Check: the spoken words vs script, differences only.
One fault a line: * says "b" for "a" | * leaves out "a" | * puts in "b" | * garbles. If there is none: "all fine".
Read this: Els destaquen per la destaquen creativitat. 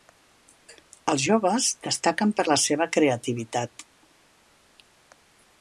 * puts in "joves"
* says "seva" for "destaquen"